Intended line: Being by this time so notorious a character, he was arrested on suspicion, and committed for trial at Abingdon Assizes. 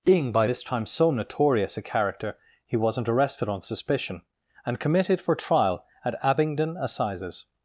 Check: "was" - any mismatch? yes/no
yes